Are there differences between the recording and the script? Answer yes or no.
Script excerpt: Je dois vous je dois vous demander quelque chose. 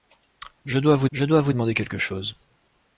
no